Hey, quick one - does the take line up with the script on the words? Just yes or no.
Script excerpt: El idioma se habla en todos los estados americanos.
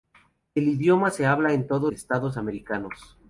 no